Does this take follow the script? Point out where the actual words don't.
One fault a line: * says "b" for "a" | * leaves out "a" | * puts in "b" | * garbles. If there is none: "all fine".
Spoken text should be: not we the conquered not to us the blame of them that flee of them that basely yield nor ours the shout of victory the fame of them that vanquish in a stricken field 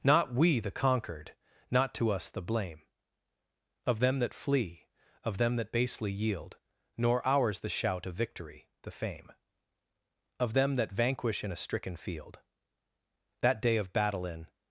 * puts in "that day of battle in"